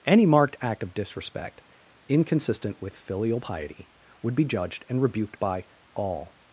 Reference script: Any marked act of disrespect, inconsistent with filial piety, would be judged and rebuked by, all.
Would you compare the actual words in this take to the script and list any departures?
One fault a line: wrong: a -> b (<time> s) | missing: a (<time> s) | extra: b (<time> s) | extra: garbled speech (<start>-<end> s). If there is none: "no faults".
no faults